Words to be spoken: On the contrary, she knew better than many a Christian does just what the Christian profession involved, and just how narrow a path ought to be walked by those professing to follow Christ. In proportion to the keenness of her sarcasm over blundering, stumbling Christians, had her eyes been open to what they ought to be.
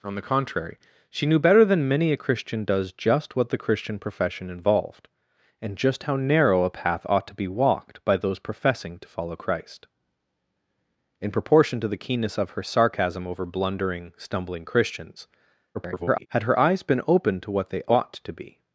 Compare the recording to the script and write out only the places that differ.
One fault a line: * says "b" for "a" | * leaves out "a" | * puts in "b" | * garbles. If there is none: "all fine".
* garbles